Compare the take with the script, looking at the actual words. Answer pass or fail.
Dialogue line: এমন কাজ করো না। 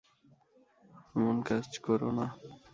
pass